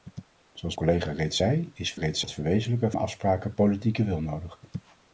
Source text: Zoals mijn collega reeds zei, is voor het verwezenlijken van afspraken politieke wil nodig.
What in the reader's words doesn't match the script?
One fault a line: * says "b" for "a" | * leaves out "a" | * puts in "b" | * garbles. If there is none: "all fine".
* leaves out "mijn"
* says "reeds" for "voor"
* leaves out "van"